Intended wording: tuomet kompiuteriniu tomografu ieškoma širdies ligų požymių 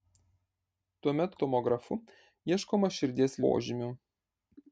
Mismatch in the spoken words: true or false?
true